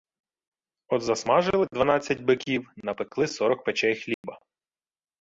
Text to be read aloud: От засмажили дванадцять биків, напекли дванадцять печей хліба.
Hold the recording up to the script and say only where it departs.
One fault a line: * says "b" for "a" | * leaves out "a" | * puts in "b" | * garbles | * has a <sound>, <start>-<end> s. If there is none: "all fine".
* says "сорок" for "дванадцять"
* has a dropout, 4.1-4.2 s